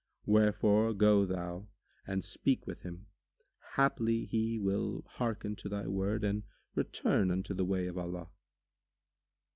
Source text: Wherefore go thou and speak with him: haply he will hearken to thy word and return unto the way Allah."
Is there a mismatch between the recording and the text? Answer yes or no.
yes